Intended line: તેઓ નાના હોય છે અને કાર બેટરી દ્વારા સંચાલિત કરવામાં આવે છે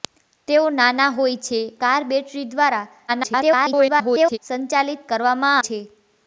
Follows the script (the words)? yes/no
no